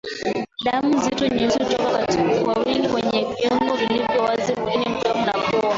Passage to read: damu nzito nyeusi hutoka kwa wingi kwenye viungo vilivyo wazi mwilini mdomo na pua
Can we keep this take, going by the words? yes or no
yes